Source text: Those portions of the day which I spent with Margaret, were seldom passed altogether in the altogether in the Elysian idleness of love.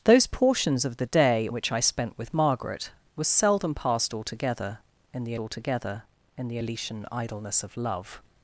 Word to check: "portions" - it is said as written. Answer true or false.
true